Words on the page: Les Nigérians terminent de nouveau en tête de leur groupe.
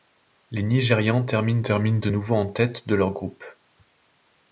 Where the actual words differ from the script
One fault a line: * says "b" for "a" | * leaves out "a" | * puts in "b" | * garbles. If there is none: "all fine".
* puts in "terminent"